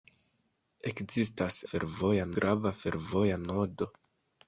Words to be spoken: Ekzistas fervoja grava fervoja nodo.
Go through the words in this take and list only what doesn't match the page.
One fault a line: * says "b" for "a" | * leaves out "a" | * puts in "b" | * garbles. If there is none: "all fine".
all fine